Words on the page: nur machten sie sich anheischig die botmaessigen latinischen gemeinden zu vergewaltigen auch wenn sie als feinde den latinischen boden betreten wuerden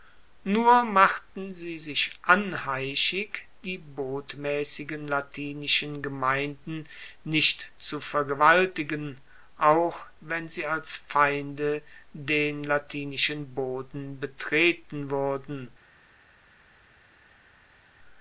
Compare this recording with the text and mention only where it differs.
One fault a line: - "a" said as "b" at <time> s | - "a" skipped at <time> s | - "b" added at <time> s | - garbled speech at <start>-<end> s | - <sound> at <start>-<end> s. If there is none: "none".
- "nicht" added at 7.2 s